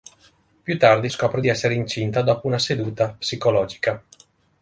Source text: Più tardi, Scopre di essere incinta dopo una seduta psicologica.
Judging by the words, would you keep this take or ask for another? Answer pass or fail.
pass